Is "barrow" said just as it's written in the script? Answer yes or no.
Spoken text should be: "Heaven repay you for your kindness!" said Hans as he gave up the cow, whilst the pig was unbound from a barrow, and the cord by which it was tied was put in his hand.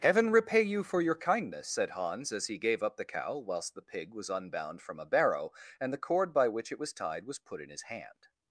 yes